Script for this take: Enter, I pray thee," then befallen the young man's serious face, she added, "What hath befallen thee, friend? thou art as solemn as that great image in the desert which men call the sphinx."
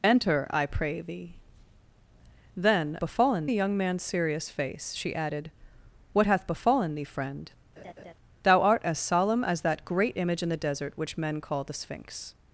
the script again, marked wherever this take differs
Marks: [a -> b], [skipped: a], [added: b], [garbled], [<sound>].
Enter, I pray thee," then befallen the young man's serious face, she added, "What hath befallen thee, friend? [laugh] thou art as solemn as that great image in the desert which men call the sphinx."